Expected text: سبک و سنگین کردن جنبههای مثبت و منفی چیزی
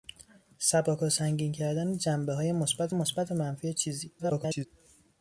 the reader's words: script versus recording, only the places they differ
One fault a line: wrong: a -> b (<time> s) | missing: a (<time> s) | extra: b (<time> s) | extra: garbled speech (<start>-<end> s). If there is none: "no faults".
extra: مثبت (2.9 s)
extra: garbled speech (4.2-4.7 s)